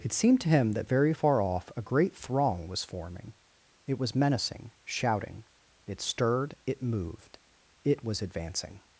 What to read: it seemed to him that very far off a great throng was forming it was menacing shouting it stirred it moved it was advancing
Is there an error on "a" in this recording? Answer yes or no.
no